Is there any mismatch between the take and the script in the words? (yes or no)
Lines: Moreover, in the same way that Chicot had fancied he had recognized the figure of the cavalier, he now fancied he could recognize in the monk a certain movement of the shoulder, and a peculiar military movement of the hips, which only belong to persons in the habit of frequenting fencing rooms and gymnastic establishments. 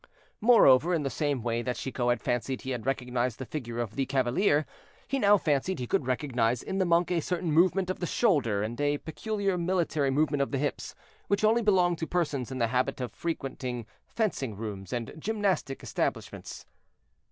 no